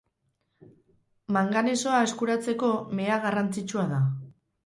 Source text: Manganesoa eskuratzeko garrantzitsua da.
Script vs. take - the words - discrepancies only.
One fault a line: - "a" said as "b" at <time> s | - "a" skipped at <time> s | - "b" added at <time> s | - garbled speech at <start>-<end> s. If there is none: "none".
- "mea" added at 3.0 s